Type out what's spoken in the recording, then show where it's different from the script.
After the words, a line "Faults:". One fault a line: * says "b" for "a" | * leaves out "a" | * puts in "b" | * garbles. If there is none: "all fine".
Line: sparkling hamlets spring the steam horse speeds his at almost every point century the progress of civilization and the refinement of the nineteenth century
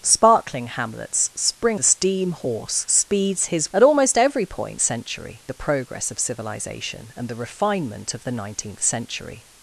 sparkling hamlets spring the steam horse speeds his at almost every point century the progress of civilization and the refinement of the nineteenth century
Faults:
all fine